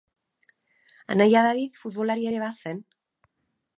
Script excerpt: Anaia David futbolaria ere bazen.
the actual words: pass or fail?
pass